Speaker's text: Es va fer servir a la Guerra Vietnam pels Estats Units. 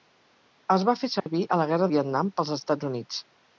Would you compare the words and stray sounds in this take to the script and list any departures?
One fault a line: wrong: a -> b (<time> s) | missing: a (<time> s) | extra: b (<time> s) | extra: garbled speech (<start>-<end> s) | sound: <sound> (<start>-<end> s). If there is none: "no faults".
sound: dropout (1.2-1.3 s)